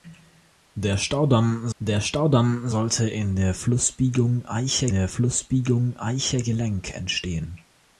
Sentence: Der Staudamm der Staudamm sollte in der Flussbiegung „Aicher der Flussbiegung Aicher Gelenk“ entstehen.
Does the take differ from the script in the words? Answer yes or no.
no